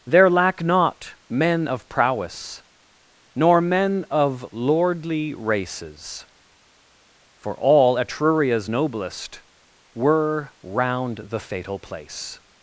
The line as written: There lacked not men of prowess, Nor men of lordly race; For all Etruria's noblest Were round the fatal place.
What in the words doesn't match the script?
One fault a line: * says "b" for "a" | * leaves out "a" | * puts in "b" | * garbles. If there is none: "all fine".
* says "lack" for "lacked"
* says "races" for "race"